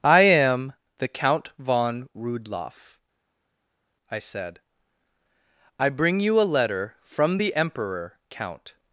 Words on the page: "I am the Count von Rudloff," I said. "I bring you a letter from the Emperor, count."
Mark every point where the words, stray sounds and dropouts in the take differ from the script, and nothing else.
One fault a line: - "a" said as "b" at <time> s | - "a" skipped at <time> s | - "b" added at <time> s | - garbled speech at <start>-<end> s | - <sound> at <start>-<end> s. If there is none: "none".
none